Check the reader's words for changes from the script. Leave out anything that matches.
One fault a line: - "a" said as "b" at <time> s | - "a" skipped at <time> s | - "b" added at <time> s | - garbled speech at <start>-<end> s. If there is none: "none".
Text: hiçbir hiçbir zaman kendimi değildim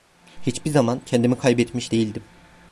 - "hiçbir" skipped at 0.7 s
- "kaybetmiş" added at 1.4 s